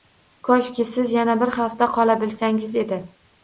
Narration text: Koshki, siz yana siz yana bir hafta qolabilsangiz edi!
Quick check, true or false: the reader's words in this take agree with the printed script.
false